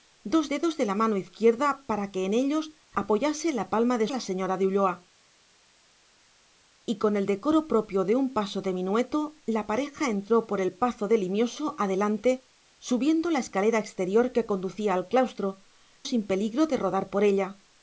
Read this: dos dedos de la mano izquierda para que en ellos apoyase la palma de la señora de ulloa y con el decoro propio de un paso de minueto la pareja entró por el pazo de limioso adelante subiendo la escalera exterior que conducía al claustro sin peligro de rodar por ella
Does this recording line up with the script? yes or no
yes